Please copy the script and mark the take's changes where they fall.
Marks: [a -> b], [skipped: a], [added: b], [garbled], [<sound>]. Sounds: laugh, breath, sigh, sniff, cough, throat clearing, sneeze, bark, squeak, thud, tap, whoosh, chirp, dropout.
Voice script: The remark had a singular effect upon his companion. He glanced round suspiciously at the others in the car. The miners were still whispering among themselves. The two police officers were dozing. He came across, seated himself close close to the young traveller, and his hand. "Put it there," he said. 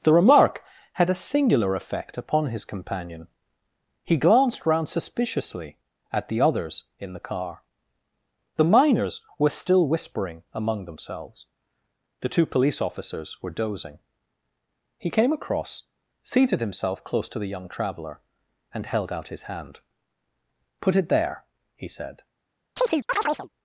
The remark had a singular effect upon his companion. He glanced round suspiciously at the others in the car. The miners were still whispering among themselves. The two police officers were dozing. He came across, seated himself close [skipped: close] to the young traveller, and [added: held out] his hand. "Put it there," he said. [chirp]